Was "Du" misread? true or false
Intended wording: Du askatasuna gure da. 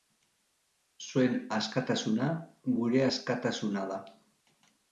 true